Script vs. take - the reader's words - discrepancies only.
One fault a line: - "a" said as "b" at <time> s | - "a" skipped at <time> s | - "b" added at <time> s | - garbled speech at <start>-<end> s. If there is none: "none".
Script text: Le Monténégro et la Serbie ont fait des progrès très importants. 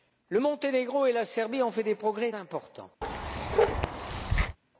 - "très" skipped at 2.3 s